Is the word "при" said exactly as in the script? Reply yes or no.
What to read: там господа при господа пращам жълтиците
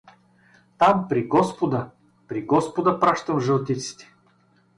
yes